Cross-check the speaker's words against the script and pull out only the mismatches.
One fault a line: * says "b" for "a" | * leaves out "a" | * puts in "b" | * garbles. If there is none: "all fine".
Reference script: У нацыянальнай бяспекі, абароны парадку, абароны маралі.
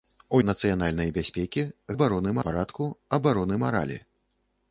all fine